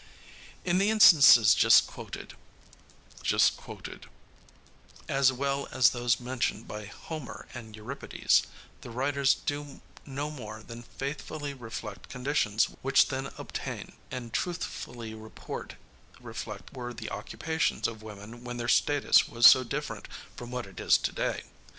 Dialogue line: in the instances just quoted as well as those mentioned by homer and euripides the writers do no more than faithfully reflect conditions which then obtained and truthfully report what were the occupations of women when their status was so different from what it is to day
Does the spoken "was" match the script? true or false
true